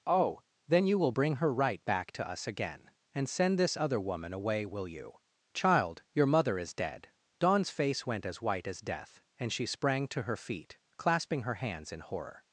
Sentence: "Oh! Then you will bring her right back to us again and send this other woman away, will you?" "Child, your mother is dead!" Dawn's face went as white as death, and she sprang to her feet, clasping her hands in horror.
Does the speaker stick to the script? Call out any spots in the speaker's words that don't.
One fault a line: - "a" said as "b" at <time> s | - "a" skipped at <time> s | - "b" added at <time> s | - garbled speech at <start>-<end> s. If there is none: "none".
none